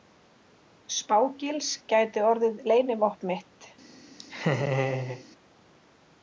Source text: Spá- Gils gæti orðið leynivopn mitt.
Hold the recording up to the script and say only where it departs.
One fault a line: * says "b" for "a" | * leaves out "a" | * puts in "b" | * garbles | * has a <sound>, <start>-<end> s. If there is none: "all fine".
* has a laugh, 4.2-5.2 s